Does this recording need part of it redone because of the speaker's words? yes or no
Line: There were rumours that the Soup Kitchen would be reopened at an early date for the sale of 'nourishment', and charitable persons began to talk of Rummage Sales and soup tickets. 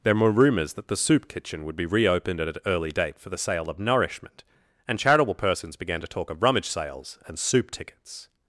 no